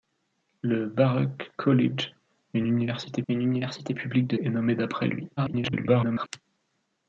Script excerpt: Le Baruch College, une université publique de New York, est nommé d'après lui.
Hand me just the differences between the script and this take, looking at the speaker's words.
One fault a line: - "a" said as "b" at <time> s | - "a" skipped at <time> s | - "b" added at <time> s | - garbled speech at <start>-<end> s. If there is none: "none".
- "une université" added at 3.3 s
- "New York" skipped at 4.4 s
- garbled speech at 5.4-6.3 s